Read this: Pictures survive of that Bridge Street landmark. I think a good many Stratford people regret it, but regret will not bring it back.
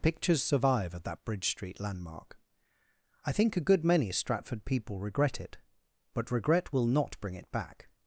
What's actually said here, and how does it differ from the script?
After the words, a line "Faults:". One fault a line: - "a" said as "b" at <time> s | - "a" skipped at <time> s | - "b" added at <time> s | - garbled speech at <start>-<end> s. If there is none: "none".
Pictures survive of that Bridge Street landmark. I think a good many Stratford people regret it, but regret will not bring it back.
Faults:
none